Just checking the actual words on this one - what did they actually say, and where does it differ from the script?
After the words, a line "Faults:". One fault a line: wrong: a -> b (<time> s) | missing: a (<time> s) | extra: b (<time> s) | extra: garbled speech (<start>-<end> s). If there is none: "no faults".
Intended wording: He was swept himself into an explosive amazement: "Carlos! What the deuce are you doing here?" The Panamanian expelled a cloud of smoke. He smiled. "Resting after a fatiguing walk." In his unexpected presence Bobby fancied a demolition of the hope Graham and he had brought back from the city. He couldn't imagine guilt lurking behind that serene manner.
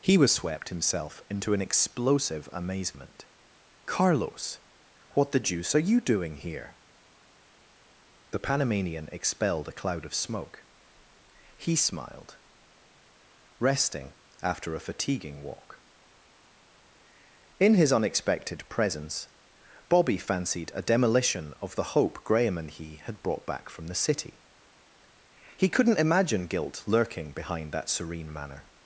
He was swept himself into an explosive amazement: "Carlos! What the deuce are you doing here?" The Panamanian expelled a cloud of smoke. He smiled. "Resting after a fatiguing walk." In his unexpected presence Bobby fancied a demolition of the hope Graham and he had brought back from the city. He couldn't imagine guilt lurking behind that serene manner.
Faults:
no faults